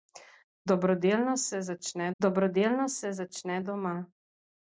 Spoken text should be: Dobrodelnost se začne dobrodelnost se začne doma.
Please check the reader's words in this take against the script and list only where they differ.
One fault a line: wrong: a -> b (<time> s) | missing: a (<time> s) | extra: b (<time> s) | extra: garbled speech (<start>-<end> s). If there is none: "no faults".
no faults